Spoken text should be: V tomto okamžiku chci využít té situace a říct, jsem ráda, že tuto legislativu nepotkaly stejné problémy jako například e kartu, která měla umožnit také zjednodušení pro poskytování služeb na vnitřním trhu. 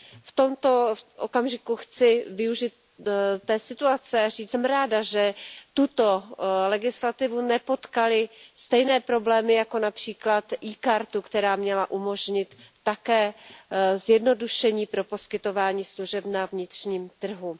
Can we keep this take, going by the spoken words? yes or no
yes